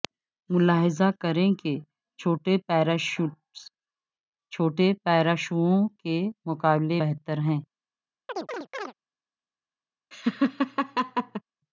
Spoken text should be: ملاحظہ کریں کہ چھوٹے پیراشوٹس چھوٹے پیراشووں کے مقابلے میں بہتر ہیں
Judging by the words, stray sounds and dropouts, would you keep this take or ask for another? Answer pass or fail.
fail